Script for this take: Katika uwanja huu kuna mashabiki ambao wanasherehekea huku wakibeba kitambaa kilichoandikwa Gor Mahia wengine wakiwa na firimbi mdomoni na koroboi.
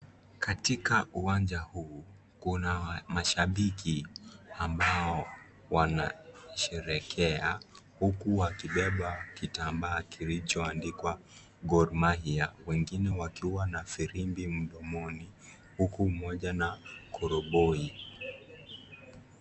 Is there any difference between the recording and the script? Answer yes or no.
yes